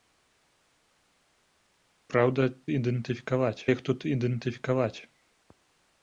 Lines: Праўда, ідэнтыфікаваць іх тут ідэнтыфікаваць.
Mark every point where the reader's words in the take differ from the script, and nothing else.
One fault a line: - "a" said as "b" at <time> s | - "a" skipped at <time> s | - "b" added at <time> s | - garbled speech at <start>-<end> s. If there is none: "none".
none